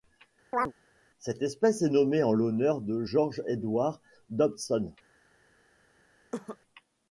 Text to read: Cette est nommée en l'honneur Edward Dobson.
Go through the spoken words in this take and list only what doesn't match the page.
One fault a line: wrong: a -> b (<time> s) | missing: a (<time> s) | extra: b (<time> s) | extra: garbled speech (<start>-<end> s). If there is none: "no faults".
extra: espèce (1.4 s)
extra: de George (2.8 s)